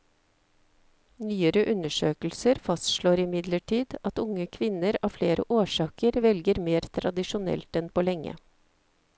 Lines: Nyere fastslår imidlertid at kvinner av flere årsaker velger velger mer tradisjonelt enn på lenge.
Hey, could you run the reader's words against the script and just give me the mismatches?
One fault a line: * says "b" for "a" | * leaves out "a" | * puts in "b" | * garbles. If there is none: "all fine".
* puts in "undersøkelser"
* puts in "unge"
* leaves out "velger"